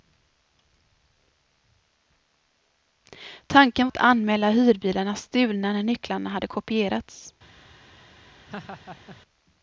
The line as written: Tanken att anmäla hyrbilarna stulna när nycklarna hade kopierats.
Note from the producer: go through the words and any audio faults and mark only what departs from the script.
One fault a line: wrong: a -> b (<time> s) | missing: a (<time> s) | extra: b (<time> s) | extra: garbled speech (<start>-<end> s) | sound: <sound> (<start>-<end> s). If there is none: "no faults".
sound: laugh (8.5-9.2 s)